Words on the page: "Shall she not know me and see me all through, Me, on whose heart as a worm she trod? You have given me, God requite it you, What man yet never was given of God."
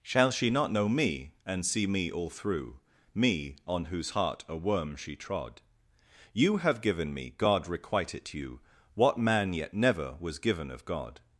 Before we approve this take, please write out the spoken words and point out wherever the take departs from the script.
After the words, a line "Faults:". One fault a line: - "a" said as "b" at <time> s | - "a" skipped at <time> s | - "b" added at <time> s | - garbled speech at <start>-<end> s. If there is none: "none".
"Shall she not know me and see me all through, Me, on whose heart a worm she trod? You have given me, God requite it you, What man yet never was given of God."
Faults:
- "as" skipped at 4.4 s